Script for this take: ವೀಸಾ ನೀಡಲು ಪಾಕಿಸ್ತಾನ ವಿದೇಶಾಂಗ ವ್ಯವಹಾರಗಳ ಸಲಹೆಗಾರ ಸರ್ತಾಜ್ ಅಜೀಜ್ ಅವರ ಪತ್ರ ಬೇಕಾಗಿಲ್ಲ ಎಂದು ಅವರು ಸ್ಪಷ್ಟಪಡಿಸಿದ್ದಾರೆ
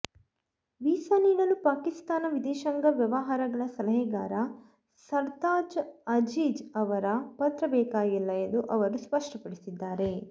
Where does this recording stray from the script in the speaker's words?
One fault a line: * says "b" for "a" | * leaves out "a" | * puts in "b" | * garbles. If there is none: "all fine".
all fine